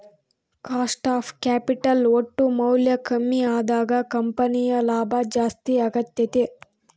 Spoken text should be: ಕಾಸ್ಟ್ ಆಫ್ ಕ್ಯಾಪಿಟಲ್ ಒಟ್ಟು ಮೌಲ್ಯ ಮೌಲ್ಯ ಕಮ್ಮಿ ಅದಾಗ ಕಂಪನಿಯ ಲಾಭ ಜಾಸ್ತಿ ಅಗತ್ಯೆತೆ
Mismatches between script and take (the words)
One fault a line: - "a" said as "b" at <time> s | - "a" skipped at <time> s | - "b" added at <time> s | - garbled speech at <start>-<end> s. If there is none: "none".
- "ಮೌಲ್ಯ" skipped at 2.9 s